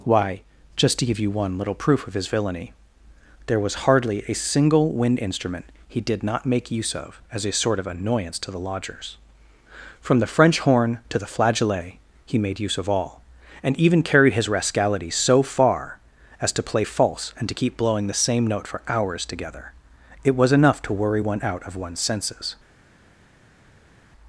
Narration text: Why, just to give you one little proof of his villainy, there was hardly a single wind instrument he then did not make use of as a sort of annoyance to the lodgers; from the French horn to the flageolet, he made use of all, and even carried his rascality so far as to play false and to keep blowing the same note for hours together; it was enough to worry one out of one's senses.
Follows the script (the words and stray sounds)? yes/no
no